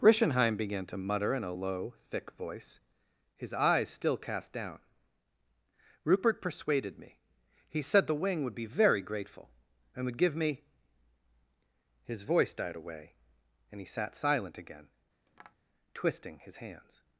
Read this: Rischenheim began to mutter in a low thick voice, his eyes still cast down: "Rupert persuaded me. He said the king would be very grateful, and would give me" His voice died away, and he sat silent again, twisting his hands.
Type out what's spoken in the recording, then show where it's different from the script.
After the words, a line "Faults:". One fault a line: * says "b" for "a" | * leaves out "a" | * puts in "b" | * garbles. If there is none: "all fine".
Rischenheim began to mutter in a low thick voice, his eyes still cast down: "Rupert persuaded me. He said the wing would be very grateful, and would give me" His voice died away, and he sat silent again, twisting his hands.
Faults:
* says "wing" for "king"